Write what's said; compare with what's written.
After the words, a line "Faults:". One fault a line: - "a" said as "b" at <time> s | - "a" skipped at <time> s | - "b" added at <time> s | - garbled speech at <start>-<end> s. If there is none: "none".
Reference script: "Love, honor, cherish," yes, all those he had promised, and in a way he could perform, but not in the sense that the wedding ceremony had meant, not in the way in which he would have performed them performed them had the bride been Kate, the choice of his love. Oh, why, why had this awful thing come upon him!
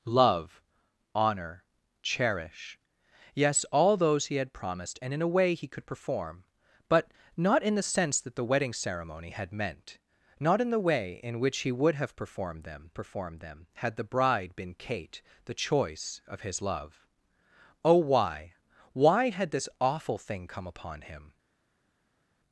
"Love, honor, cherish," yes, all those he had promised, and in a way he could perform, but not in the sense that the wedding ceremony had meant, not in the way in which he would have performed them performed them had the bride been Kate, the choice of his love. Oh, why, why had this awful thing come upon him!
Faults:
none